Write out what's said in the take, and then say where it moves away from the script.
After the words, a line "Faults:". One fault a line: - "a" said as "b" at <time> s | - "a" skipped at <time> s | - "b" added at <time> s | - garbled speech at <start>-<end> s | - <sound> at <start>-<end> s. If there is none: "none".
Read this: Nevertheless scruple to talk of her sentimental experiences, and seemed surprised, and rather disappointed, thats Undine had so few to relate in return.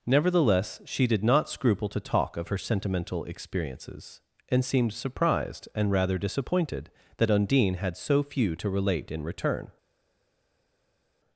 Nevertheless she did not scruple to talk of her sentimental experiences, and seemed surprised, and rather disappointed, that Undine had so few to relate in return.
Faults:
- "she did not" added at 0.8 s
- "thats" said as "that" at 7.2 s